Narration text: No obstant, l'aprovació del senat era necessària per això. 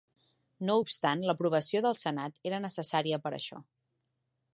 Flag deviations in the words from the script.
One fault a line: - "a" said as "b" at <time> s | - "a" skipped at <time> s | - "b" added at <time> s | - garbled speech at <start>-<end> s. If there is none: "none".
none